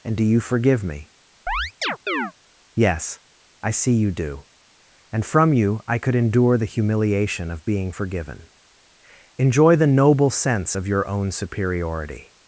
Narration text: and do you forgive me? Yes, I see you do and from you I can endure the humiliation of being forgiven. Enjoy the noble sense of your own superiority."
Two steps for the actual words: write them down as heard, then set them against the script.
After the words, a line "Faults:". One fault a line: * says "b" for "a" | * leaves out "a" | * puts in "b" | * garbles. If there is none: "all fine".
and do you forgive me? Yes, I see you do and from you I could endure the humiliation of being forgiven. Enjoy the noble sense of your own superiority."
Faults:
* says "could" for "can"